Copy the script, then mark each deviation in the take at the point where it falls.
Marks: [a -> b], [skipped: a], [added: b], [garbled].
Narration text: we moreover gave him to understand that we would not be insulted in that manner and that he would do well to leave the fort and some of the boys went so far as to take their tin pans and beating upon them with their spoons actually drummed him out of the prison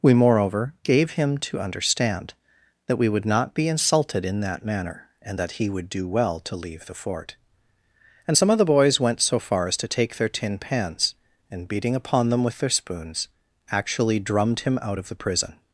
we moreover gave him to understand that we would not be insulted in that manner and that he would do well to leave the fort and some of the boys went so far as to take their tin pans and beating upon them with their spoons actually drummed him out of the prison